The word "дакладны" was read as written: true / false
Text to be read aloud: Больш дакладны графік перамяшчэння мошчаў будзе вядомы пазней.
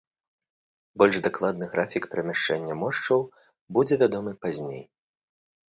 true